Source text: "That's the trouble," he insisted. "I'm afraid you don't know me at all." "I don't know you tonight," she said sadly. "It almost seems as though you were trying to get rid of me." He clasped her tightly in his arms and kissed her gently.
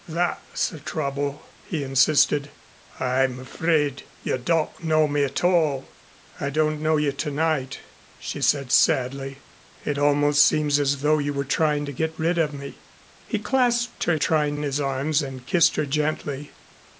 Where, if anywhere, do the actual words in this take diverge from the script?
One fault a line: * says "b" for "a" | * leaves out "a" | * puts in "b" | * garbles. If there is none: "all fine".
* says "trying" for "tightly"